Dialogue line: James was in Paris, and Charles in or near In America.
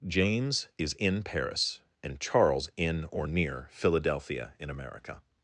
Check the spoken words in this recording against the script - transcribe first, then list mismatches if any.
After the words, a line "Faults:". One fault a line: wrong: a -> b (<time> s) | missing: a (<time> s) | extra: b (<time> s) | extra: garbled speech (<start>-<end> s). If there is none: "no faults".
James is in Paris, and Charles in or near Philadelphia in America.
Faults:
wrong: was -> is (0.8 s)
extra: Philadelphia (3.7 s)